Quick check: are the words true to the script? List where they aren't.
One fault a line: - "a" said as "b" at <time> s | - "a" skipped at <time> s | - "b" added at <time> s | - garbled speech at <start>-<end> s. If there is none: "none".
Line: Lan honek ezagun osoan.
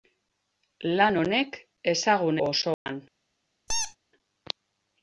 none